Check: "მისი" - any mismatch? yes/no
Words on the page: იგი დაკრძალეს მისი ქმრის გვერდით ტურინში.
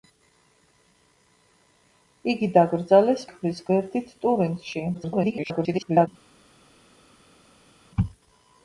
yes